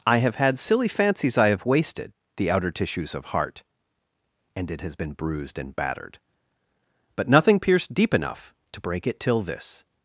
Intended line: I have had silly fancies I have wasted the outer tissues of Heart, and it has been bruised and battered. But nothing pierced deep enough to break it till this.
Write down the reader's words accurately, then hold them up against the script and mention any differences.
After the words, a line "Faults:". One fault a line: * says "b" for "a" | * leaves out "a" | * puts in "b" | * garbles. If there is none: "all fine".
I have had silly fancies I have wasted the outer tissues of Heart, and it has been bruised and battered. But nothing pierced deep enough to break it till this.
Faults:
all fine